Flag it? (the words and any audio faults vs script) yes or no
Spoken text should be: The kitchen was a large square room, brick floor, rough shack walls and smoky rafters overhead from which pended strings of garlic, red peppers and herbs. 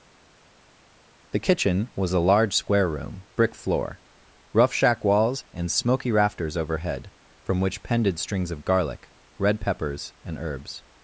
no